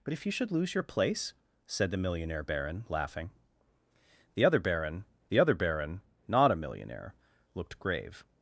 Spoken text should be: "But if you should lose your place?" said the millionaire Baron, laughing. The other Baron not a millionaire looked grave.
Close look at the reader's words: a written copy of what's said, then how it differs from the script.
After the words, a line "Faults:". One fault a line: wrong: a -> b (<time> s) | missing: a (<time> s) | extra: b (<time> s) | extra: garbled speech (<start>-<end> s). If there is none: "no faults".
"But if you should lose your place?" said the millionaire Baron, laughing. The other Baron the other Baron not a millionaire looked grave.
Faults:
extra: the other Baron (5.3 s)